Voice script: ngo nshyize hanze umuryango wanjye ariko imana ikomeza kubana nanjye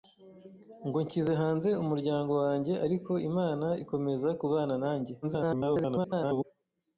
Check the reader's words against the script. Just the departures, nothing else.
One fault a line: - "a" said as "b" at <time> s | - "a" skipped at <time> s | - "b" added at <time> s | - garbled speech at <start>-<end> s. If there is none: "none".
- garbled speech at 5.2-6.4 s